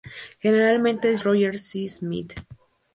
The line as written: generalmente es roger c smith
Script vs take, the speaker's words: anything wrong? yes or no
no